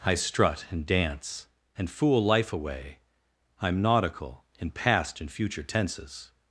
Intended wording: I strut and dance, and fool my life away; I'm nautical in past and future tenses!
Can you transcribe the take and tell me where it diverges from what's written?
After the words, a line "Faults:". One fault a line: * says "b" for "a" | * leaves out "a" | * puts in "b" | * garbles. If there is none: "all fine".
I strut and dance, and fool life away; I'm nautical in past and future tenses!
Faults:
* leaves out "my"